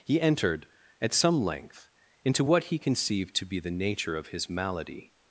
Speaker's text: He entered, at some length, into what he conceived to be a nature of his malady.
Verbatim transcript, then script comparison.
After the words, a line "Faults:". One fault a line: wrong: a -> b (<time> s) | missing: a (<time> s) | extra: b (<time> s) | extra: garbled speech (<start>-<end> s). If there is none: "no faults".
He entered, at some length, into what he conceived to be the nature of his malady.
Faults:
wrong: a -> the (3.6 s)